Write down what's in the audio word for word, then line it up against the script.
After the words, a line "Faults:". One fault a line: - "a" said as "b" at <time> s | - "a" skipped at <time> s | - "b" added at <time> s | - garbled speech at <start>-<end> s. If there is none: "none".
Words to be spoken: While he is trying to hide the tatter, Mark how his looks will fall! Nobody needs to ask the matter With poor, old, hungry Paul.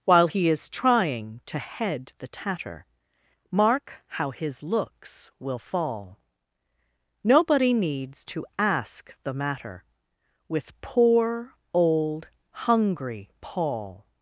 While he is trying to head the tatter, Mark how his looks will fall! Nobody needs to ask the matter With poor, old, hungry Paul.
Faults:
- "hide" said as "head" at 1.6 s